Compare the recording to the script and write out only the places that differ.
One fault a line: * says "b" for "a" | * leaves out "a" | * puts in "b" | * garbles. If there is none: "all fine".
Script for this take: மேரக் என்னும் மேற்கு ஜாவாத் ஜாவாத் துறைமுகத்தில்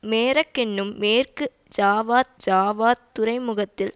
all fine